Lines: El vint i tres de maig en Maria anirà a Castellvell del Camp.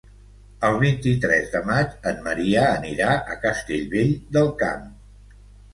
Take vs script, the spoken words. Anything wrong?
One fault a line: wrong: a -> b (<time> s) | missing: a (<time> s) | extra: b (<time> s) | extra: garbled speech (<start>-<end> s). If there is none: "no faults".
no faults